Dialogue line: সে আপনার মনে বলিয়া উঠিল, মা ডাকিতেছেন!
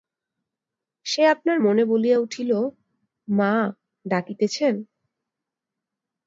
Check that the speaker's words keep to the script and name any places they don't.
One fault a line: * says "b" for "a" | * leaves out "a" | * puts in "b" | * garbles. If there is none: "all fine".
all fine